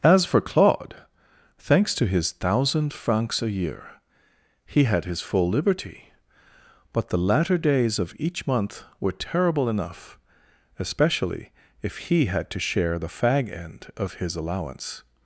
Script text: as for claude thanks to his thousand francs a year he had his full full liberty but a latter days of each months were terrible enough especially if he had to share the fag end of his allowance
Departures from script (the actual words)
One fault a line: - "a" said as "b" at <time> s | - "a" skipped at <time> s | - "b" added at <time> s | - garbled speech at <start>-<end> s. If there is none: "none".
- "full" skipped at 5.5 s
- "a" said as "the" at 7.1 s
- "months" said as "month" at 8.5 s